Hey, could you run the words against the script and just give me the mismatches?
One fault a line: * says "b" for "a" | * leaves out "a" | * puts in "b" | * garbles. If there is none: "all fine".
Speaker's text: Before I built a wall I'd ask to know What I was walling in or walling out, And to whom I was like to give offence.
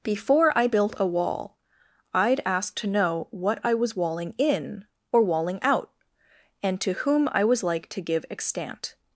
* says "extant" for "offence"